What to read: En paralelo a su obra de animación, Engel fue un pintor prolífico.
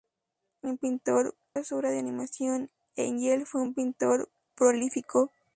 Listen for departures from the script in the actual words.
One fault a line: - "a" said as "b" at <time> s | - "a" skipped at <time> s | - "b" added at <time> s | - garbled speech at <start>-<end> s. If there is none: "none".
- "paralelo" said as "pintor" at 0.8 s